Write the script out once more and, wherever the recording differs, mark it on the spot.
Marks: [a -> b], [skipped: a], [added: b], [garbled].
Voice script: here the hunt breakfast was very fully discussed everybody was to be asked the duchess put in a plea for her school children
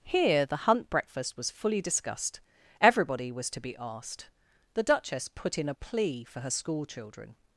here the hunt breakfast was [skipped: very] fully discussed everybody was to be asked the duchess put in a plea for her school children